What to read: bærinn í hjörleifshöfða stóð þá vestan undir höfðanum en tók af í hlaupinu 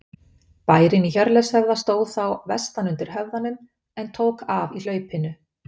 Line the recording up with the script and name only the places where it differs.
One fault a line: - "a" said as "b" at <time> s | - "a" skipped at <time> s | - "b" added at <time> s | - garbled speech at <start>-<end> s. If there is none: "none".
none